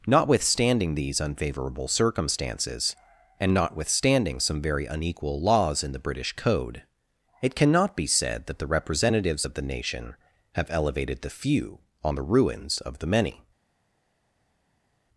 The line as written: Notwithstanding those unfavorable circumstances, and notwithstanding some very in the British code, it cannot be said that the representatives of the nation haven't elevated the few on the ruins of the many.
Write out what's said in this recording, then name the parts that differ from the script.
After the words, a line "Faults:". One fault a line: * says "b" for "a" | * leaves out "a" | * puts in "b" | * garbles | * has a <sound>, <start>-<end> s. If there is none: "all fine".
Notwithstanding these unfavorable circumstances, and notwithstanding some very unequal laws in the British code, it cannot be said that the representatives of the nation have elevated the few on the ruins of the many.
Faults:
* says "these" for "those"
* puts in "unequal laws"
* says "have" for "haven't"